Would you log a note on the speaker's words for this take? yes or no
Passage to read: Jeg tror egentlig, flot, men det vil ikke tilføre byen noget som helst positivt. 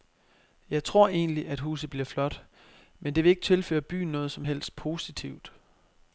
yes